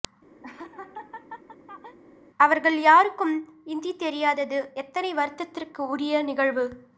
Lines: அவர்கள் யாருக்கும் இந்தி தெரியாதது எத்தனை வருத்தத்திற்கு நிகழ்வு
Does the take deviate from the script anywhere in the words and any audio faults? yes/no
yes